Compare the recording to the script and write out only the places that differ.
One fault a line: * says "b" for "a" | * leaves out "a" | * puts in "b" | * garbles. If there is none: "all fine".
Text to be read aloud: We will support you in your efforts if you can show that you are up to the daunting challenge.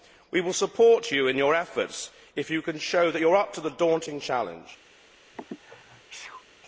all fine